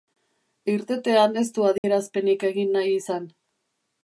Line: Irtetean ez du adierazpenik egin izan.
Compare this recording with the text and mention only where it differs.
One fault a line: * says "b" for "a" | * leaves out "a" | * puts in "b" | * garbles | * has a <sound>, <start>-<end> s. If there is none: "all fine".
* has a dropout, 1.8-1.8 s
* puts in "nahi"